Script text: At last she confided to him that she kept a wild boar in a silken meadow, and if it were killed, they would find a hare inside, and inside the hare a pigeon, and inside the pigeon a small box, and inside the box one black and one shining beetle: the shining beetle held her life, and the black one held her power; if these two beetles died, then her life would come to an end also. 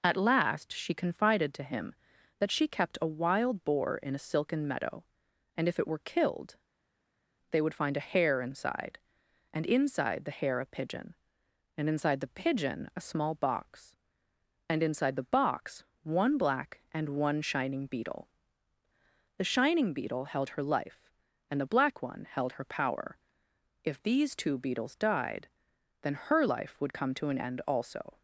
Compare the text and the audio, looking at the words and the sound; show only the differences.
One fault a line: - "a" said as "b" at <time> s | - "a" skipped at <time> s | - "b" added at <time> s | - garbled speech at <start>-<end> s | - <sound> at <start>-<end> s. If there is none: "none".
none